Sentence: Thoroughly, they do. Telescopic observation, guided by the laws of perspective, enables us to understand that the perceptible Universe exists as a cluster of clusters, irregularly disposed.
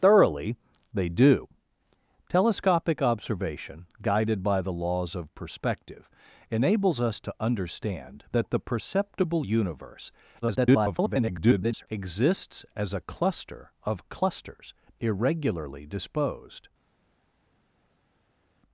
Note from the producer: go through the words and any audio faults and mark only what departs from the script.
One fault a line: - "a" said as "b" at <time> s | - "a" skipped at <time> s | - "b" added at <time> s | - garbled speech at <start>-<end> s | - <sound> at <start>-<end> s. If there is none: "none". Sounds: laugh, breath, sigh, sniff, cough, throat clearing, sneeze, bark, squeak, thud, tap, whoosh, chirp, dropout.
- garbled speech at 10.4-11.9 s